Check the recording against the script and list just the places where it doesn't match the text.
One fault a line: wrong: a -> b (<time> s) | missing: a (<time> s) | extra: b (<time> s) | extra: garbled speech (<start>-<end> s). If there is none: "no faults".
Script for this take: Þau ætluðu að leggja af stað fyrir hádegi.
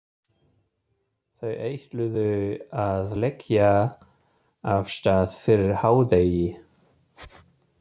no faults